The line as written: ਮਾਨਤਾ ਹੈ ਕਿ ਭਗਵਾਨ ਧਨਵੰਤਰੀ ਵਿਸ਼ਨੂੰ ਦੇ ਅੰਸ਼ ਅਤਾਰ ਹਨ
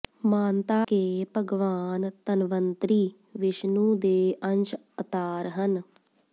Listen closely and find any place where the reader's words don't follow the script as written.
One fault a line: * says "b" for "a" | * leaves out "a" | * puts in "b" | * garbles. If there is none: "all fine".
* leaves out "ਹੈ"